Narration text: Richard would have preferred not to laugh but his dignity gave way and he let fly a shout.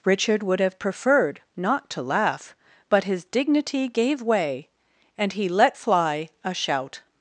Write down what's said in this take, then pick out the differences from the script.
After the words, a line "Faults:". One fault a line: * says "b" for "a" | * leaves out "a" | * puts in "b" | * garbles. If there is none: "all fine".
Richard would have preferred not to laugh but his dignity gave way and he let fly a shout.
Faults:
all fine